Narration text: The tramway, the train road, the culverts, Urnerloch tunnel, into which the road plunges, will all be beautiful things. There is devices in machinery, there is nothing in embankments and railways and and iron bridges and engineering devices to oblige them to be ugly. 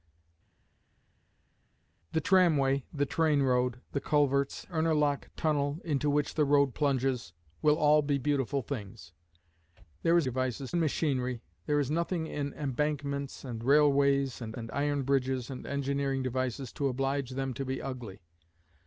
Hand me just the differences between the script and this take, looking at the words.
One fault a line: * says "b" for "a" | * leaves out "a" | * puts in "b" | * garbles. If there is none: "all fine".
all fine